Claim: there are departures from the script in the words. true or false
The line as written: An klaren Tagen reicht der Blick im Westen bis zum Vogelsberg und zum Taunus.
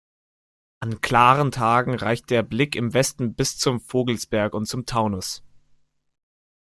false